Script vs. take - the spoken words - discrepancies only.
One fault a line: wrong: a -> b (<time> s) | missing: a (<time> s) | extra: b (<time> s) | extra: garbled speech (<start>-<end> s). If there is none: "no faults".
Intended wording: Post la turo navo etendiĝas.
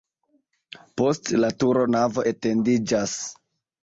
no faults